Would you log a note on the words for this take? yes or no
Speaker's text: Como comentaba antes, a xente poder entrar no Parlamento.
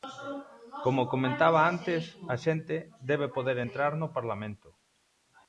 yes